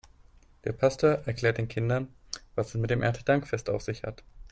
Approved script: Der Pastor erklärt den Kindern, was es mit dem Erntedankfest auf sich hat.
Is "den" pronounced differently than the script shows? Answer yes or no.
no